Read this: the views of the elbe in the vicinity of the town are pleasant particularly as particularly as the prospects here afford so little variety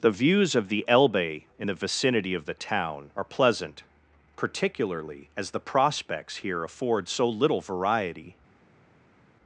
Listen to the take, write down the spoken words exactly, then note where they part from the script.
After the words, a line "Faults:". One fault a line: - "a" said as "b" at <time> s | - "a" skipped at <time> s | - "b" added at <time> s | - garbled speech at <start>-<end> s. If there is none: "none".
the views of the elbe in the vicinity of the town are pleasant particularly as the prospects here afford so little variety
Faults:
- "particularly as" skipped at 5.5 s